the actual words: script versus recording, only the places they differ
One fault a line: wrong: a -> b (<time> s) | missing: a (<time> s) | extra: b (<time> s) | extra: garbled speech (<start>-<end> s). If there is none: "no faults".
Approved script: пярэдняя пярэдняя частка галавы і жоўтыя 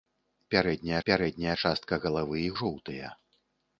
no faults